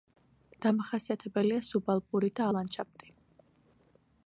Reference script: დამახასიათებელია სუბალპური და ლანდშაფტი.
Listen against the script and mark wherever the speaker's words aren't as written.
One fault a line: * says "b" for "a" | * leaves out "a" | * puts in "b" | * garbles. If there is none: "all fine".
all fine